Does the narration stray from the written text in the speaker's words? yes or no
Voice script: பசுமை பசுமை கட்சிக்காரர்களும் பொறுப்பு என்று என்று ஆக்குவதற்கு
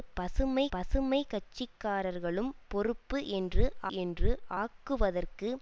no